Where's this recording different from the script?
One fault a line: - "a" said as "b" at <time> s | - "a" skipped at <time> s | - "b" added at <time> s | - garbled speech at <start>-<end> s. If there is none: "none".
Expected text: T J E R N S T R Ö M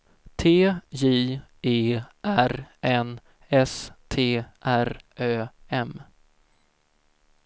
none